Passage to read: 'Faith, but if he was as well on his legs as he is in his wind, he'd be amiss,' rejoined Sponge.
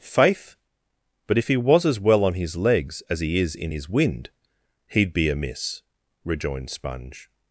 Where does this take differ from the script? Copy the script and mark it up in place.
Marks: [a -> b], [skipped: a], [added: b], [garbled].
'Faith, but if he was as well on his legs as he is in his wind, he'd be amiss,' rejoined Sponge.